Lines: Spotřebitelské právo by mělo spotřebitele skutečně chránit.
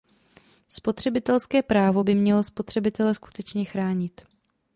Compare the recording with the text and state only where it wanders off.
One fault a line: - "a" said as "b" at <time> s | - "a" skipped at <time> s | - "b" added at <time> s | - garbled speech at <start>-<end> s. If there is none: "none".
none